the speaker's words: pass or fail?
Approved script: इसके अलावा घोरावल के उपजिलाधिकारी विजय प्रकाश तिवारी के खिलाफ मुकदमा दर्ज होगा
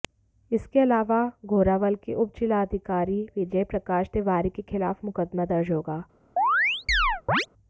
pass